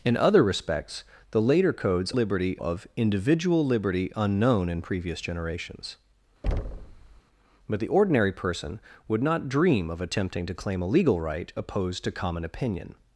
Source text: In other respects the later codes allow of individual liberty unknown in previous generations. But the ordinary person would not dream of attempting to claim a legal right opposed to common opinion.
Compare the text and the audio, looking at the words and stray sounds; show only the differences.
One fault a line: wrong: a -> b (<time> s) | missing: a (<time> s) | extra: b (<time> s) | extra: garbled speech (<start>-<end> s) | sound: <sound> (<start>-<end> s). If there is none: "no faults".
wrong: allow -> liberty (2.1 s)
sound: thud (6.4-7.2 s)